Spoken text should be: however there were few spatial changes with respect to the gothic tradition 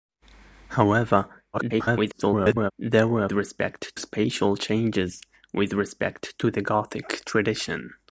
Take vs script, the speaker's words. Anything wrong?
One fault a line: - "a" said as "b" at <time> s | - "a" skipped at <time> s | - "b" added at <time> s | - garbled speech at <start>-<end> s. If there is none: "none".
- garbled speech at 1.5-2.7 s
- "few" said as "respect" at 3.3 s